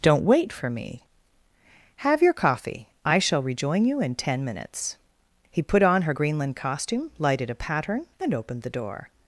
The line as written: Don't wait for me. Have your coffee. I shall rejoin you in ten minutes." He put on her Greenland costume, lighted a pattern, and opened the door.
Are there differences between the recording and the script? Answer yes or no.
no